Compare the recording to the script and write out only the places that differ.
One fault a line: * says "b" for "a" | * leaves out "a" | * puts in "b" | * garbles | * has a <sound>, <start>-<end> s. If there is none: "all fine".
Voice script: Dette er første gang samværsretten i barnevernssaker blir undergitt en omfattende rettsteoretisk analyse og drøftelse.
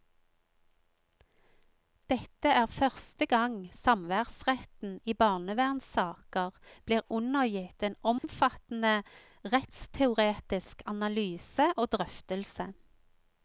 * has a dropout, 8.2-8.2 s